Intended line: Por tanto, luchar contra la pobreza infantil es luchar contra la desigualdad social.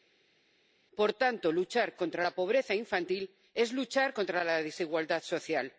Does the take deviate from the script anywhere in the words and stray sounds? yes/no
no